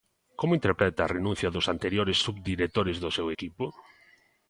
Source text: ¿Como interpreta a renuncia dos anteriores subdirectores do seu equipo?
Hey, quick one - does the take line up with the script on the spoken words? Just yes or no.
yes